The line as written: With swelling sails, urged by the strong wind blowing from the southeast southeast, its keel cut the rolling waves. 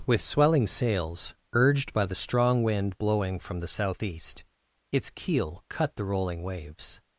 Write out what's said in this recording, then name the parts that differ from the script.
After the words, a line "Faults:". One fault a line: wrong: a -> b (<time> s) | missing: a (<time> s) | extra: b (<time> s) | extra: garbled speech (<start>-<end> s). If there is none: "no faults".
With swelling sails, urged by the strong wind blowing from the southeast, its keel cut the rolling waves.
Faults:
missing: southeast (4.5 s)